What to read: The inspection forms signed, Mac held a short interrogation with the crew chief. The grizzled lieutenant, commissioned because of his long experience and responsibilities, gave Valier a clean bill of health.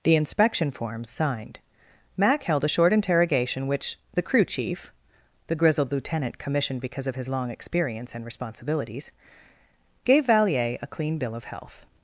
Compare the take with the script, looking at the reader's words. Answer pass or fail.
fail